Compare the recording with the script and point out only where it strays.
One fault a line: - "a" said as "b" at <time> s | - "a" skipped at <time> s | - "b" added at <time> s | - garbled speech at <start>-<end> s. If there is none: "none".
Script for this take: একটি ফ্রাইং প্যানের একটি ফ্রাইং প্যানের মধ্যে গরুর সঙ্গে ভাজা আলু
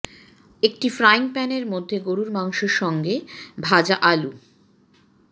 - "একটি ফ্রাইং প্যানের" skipped at 1.6 s
- "মাংস" added at 2.3 s